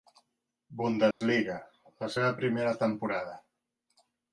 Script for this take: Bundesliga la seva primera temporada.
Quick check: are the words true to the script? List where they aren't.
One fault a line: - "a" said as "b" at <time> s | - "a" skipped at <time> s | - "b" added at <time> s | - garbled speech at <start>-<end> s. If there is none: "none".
none